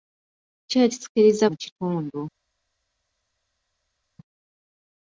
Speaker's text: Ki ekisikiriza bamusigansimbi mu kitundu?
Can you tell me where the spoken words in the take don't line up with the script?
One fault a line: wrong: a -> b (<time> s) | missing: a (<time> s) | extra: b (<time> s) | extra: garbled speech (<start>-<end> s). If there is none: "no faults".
missing: bamusigansimbi (1.4 s)